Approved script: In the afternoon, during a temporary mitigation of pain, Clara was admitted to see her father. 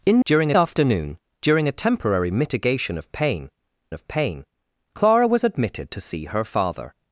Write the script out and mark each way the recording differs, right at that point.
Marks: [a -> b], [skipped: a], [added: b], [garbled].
In [the -> during] afternoon, during a temporary mitigation of pain, [added: of pain] Clara was admitted to see her father.